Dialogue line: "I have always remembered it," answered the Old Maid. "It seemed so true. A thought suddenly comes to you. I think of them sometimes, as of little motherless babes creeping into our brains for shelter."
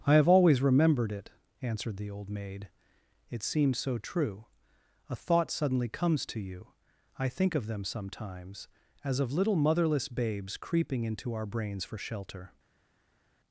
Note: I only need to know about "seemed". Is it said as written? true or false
false